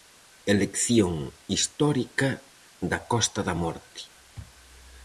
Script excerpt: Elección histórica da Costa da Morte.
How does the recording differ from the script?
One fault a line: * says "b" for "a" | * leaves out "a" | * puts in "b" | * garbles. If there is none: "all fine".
all fine